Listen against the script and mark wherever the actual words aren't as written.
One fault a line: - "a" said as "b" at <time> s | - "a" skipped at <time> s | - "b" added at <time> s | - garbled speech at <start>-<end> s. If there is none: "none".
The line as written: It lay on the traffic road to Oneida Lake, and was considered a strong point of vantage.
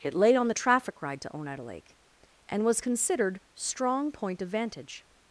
- "road" said as "ride" at 1.0 s
- "a" skipped at 3.4 s